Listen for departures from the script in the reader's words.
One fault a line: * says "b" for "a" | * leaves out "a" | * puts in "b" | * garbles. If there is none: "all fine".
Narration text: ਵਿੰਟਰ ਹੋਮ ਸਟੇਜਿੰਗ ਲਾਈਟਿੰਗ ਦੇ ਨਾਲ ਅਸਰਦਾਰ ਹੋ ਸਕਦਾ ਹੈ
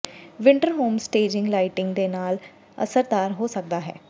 all fine